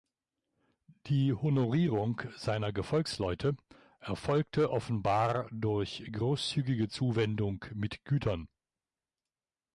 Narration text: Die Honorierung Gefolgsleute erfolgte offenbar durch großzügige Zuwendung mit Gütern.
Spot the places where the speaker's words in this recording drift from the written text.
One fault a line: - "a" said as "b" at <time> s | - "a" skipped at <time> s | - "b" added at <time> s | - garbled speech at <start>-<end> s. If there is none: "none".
- "seiner" added at 2.4 s